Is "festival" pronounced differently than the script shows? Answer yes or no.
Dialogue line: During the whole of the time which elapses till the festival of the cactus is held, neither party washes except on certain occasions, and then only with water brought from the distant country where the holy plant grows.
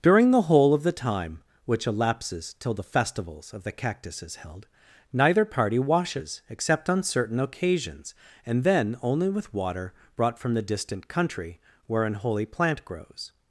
yes